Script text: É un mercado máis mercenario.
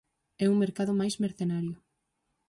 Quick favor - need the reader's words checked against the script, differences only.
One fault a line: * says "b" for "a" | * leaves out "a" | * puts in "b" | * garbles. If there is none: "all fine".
all fine